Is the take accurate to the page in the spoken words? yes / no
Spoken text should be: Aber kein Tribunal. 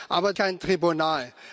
yes